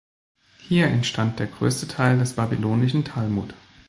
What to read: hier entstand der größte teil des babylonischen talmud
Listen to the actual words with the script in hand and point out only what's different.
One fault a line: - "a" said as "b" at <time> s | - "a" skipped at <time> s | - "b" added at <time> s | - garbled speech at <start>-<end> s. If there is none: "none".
none